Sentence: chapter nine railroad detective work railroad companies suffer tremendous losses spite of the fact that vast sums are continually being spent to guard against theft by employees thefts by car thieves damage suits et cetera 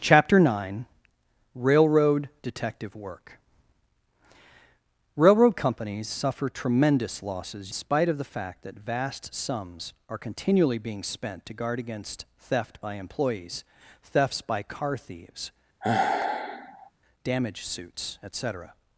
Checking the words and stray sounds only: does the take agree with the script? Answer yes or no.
no